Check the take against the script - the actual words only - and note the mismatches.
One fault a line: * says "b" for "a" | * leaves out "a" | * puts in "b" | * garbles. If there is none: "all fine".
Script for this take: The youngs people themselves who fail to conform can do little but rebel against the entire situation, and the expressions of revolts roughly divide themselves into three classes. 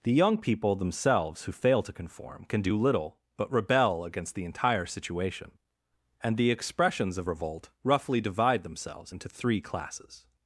* says "young" for "youngs"
* says "revolt" for "revolts"